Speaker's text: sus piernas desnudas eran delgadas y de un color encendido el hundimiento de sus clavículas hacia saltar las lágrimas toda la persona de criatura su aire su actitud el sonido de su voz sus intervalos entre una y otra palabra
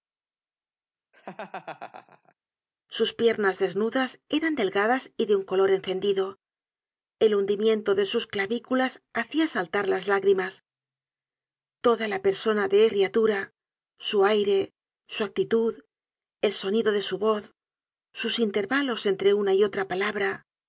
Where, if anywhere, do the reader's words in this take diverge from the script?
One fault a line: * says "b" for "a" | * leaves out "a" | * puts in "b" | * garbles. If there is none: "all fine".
all fine